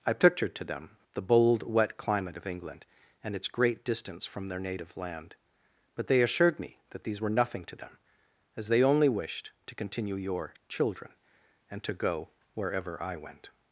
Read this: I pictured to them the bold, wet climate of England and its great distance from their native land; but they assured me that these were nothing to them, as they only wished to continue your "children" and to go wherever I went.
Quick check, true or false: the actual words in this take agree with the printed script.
true